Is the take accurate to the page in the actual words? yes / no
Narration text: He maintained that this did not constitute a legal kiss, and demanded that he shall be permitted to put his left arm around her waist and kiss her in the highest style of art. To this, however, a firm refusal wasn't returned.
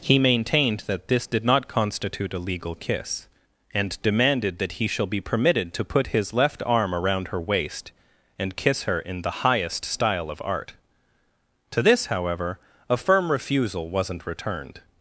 yes